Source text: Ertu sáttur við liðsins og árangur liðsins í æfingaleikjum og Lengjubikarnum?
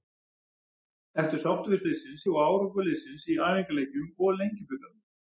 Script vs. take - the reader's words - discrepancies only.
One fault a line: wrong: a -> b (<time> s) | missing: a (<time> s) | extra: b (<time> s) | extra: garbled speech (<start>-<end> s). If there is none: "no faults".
no faults